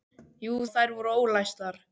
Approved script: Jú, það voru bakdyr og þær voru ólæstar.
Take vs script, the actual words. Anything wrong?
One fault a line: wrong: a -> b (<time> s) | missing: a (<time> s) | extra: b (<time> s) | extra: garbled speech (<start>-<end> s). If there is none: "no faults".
missing: það voru bakdyr (0.5 s)